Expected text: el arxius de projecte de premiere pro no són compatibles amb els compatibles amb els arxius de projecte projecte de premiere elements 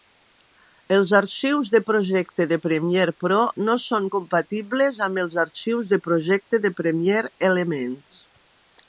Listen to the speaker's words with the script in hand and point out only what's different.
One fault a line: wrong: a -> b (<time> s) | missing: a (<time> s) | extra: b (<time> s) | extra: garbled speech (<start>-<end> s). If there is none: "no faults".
wrong: el -> els (0.9 s)
missing: compatibles amb els (5.4 s)
missing: projecte (6.6 s)